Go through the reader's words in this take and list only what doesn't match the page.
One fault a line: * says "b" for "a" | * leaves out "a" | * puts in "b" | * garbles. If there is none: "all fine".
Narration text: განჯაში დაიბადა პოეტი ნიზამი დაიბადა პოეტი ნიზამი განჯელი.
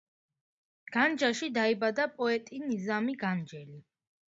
* leaves out "დაიბადა პოეტი ნიზამი"